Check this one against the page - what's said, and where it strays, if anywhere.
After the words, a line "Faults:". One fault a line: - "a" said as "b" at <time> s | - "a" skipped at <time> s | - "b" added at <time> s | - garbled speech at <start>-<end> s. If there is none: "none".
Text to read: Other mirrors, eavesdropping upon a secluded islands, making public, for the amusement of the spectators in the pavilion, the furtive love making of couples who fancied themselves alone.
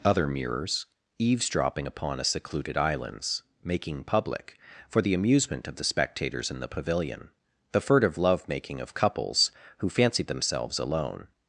Other mirrors, eavesdropping upon a secluded islands, making public, for the amusement of the spectators in the pavilion, the furtive love making of couples who fancied themselves alone.
Faults:
none